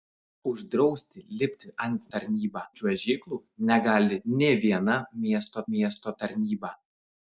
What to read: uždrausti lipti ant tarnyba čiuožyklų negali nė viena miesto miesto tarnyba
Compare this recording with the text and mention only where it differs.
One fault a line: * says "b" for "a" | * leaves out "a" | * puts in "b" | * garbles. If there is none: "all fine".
all fine